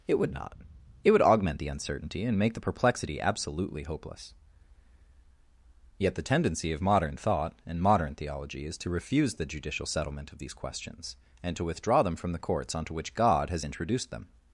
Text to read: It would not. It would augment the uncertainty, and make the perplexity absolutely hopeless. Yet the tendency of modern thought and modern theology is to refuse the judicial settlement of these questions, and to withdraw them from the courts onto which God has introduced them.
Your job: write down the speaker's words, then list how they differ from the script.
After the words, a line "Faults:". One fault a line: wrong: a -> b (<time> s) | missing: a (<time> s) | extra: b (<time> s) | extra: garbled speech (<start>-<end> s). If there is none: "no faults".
It would not. It would augment the uncertainty, and make the perplexity absolutely hopeless. Yet the tendency of modern thought and modern theology is to refuse the judicial settlement of these questions, and to withdraw them from the courts onto which God has introduced them.
Faults:
no faults